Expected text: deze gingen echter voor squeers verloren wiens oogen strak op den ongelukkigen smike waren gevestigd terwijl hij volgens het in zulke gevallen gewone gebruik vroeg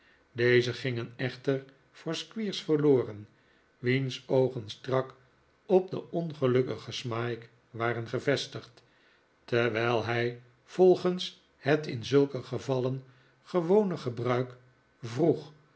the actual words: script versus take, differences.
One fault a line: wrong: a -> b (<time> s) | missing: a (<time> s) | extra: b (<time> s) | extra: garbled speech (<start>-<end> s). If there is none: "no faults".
no faults